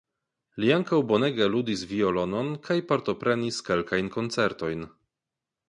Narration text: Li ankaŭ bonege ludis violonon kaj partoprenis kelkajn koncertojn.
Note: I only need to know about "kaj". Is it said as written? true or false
true